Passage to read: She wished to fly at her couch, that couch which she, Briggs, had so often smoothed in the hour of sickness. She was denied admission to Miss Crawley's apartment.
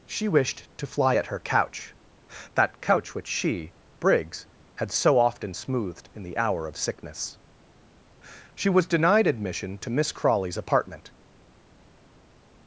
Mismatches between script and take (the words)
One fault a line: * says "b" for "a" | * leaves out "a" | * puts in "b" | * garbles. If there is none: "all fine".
all fine